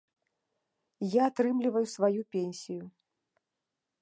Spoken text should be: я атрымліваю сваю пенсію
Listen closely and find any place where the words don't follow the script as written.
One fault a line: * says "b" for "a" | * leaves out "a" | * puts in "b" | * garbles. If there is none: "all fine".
all fine